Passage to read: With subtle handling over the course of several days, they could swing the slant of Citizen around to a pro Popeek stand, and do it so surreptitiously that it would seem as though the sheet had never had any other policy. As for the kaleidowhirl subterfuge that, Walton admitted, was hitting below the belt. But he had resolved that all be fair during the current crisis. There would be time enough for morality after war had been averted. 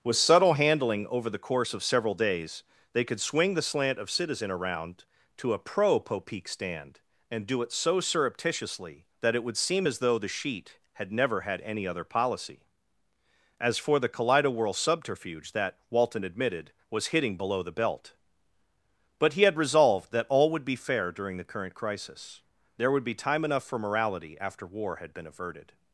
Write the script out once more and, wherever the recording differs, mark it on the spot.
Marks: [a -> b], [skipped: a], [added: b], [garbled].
With subtle handling over the course of several days, they could swing the slant of Citizen around to a pro Popeek stand, and do it so surreptitiously that it would seem as though the sheet had never had any other policy. As for the kaleidowhirl subterfuge that, Walton admitted, was hitting below the belt. But he had resolved that all [added: would] be fair during the current crisis. There would be time enough for morality after war had been averted.